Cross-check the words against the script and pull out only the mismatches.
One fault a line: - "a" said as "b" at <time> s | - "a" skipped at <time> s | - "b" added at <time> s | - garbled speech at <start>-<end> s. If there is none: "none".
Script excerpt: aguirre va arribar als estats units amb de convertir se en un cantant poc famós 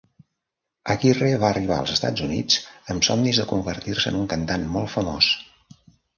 - "somnis" added at 3.1 s
- "poc" said as "molt" at 4.8 s